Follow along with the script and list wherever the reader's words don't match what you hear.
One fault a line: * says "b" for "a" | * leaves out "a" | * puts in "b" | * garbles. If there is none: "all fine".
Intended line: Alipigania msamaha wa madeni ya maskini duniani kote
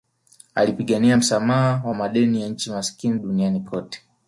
* puts in "nchi"